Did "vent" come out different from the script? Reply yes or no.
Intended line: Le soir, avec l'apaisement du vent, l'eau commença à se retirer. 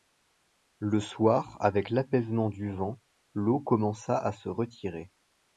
no